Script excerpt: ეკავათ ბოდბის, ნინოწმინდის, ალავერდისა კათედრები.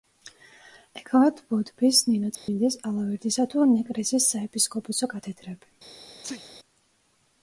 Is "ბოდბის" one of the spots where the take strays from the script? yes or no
no